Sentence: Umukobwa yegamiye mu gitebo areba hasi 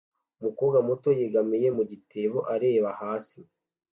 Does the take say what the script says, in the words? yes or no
no